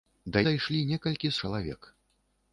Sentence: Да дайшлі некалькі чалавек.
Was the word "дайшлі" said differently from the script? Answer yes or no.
no